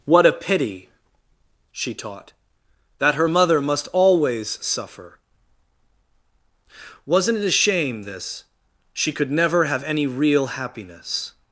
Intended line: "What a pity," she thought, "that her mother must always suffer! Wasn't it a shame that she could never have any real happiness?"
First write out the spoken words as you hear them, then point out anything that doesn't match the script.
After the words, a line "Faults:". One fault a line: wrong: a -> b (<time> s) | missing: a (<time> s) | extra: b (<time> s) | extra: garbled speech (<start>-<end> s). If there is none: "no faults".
"What a pity," she taught, "that her mother must always suffer! Wasn't it a shame this she could never have any real happiness?"
Faults:
wrong: thought -> taught (1.9 s)
wrong: that -> this (8.0 s)